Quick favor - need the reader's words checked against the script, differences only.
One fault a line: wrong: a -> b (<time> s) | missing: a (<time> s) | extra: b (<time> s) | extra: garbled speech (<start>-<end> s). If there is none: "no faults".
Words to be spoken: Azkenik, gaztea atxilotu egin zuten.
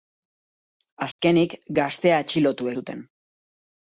missing: egin (2.7 s)